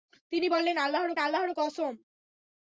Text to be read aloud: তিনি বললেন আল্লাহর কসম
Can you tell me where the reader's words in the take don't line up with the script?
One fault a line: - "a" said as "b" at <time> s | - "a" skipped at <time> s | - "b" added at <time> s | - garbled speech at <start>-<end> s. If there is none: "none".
- "আল্লাহর" added at 1.2 s